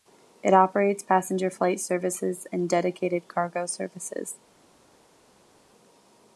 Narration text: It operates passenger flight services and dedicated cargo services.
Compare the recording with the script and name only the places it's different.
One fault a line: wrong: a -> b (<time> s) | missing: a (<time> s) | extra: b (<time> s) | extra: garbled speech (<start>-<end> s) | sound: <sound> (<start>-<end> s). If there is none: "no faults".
no faults